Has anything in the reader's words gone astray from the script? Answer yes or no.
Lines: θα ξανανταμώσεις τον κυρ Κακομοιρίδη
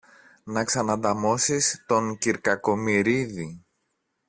yes